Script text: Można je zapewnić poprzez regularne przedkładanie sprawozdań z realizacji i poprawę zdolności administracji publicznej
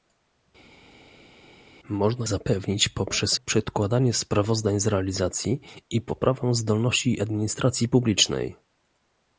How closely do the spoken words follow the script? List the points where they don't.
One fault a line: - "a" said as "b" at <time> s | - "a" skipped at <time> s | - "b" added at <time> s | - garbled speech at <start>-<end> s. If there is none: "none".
- "je" skipped at 2.3 s
- "regularne" skipped at 3.4 s